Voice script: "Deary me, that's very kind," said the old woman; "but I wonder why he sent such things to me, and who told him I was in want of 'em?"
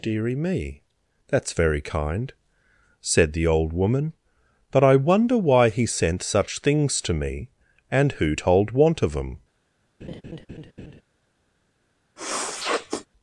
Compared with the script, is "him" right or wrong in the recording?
wrong